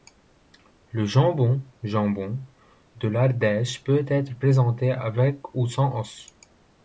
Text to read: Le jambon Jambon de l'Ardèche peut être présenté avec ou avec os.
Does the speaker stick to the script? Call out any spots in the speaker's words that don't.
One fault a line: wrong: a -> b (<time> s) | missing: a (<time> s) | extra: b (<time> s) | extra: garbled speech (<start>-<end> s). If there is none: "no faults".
wrong: avec -> sans (5.7 s)